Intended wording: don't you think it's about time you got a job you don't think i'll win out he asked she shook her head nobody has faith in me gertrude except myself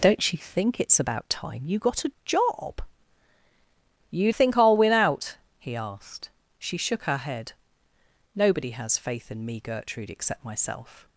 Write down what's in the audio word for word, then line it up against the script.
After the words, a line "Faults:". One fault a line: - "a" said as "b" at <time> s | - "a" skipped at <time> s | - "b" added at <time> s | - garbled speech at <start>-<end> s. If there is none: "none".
don't you think it's about time you got a job you think i'll win out he asked she shook her head nobody has faith in me gertrude except myself
Faults:
- "don't" skipped at 4.3 s